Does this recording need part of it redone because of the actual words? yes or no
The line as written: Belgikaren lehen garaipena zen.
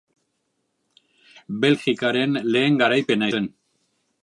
no